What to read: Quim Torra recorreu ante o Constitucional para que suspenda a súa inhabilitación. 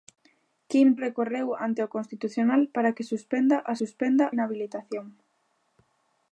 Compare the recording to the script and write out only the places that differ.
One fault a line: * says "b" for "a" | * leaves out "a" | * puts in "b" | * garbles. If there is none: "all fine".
* leaves out "Torra"
* says "suspenda" for "súa"